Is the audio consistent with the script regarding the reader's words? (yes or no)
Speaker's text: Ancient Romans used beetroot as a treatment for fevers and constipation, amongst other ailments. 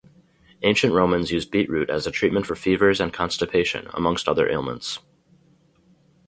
yes